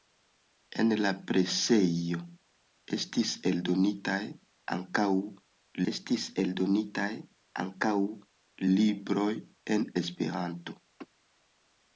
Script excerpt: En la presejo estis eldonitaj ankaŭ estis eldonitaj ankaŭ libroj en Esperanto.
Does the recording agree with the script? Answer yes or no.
yes